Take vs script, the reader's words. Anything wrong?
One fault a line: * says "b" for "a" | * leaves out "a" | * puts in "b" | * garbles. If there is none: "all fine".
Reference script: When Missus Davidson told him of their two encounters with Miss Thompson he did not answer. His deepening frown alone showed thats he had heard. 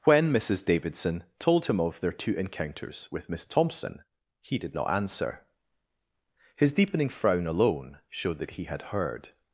* says "that" for "thats"